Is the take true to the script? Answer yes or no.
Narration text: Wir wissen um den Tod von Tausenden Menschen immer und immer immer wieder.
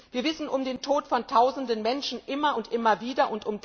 no